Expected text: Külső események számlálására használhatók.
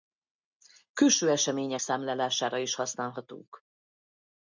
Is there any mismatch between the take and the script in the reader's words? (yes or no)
yes